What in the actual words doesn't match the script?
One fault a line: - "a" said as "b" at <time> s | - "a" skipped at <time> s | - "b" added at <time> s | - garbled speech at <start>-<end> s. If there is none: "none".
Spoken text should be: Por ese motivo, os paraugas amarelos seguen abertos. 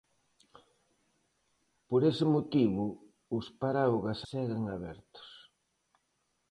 - "amarelos" skipped at 4.2 s